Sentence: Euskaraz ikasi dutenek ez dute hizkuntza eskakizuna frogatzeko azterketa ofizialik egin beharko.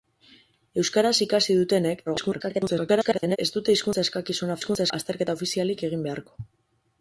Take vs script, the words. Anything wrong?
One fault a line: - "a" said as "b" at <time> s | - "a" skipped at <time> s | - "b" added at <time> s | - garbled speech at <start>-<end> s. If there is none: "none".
- garbled speech at 2.1-3.4 s
- "frogatzeko" said as "hizkuntza" at 4.6 s